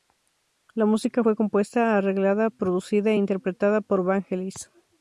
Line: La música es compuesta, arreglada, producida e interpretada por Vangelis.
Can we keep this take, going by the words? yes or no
no